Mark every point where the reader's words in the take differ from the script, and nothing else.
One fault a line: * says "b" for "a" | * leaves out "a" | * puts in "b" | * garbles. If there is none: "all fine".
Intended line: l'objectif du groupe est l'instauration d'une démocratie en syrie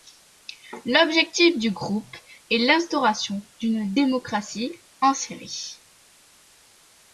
all fine